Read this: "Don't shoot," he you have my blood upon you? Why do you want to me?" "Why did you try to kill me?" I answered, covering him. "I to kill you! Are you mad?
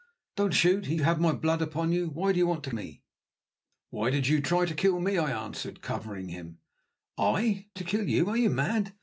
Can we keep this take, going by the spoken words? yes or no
yes